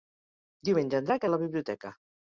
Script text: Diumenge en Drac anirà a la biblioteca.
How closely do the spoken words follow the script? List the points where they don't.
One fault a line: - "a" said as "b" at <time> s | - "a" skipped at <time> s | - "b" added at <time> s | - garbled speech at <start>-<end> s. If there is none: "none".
- "anirà" skipped at 1.3 s